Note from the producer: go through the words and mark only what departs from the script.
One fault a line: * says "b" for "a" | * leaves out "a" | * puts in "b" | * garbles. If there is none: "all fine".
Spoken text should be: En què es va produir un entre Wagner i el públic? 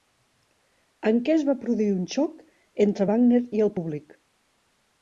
* puts in "xoc"